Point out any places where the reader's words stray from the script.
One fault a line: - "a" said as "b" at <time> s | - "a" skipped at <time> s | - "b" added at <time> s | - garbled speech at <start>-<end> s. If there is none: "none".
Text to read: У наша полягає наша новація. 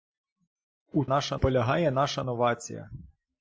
none